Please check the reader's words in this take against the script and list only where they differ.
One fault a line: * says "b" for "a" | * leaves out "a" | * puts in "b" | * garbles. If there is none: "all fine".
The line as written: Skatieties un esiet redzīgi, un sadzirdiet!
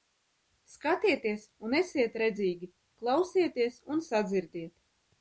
* puts in "klausieties"